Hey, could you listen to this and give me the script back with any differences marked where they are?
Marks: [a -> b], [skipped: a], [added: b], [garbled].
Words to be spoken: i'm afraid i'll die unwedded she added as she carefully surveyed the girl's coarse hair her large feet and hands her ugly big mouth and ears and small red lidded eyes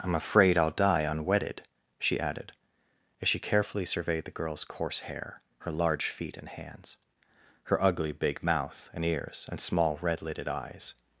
i'm afraid i'll die unwedded she added as she carefully surveyed the girl's coarse hair her large feet and hands her ugly big mouth and ears and small red lidded eyes